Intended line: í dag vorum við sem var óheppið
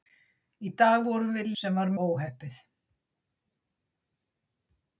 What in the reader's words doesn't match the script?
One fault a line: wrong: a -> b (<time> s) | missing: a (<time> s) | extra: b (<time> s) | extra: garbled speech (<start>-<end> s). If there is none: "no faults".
no faults